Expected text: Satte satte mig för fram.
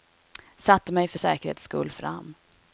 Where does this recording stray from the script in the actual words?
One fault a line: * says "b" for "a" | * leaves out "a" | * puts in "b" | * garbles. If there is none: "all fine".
* leaves out "satte"
* puts in "säkerhets skull"